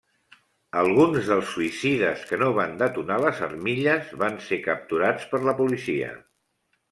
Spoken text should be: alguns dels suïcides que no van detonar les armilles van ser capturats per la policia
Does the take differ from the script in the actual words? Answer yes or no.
no